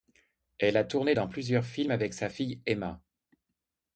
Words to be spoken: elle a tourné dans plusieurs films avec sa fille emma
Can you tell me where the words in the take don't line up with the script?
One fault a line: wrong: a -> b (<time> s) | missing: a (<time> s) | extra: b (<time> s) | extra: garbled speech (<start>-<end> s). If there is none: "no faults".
no faults